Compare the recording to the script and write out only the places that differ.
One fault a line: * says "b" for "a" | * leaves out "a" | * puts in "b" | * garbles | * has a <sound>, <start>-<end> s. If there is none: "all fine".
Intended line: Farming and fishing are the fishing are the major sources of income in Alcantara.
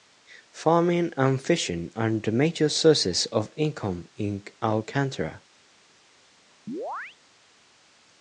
* leaves out "fishing are the"
* has a chirp, 6.7-7.2 s